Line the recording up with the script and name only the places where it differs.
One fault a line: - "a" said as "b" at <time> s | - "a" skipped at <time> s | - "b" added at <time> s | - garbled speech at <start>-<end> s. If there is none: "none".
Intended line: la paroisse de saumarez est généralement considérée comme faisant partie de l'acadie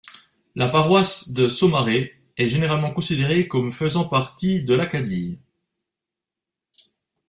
none